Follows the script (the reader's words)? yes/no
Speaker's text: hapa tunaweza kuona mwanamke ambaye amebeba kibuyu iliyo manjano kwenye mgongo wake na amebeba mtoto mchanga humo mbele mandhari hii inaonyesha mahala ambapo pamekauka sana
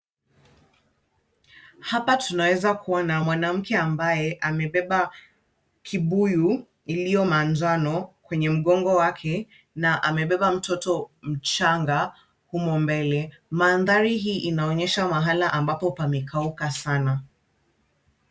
yes